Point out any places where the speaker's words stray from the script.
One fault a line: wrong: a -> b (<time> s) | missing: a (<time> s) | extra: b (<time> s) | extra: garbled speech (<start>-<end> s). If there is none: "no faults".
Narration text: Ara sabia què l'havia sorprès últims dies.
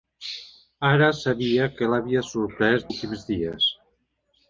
no faults